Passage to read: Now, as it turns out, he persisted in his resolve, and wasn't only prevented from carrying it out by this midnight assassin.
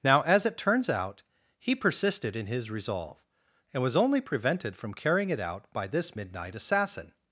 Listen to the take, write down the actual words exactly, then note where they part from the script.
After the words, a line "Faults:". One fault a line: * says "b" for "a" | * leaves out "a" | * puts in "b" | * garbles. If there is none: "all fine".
Now, as it turns out, he persisted in his resolve, and was only prevented from carrying it out by this midnight assassin.
Faults:
* says "was" for "wasn't"